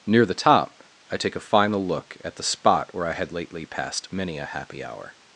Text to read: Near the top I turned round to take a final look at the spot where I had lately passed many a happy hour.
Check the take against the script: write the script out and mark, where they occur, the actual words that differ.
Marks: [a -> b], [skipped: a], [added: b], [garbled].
Near the top I [skipped: turned round to] take a final look at the spot where I had lately passed many a happy hour.